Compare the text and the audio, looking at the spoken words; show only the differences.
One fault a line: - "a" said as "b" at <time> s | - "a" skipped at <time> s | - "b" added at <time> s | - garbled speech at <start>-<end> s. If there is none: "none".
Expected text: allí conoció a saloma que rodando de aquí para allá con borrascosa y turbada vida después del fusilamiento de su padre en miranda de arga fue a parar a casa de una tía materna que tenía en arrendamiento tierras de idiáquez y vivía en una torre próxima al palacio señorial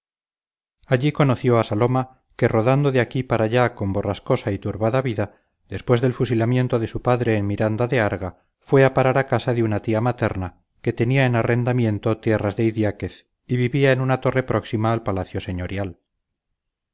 none